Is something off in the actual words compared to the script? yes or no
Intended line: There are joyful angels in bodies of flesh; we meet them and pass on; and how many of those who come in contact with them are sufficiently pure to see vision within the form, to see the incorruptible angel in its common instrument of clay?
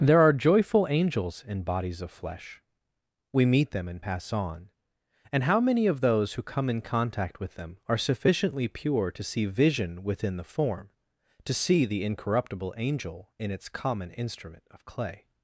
no